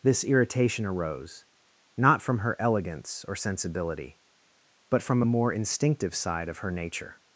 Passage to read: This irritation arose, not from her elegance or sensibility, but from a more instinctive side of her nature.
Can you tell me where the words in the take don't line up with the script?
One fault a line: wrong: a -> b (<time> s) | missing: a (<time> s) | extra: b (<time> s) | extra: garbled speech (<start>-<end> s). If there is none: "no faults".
no faults